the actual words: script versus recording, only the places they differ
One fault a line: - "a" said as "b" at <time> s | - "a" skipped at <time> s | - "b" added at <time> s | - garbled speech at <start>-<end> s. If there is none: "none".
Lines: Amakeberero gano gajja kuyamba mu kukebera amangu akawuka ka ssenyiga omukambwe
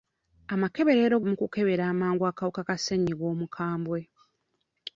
- "gano gajja kuyamba" skipped at 1.1 s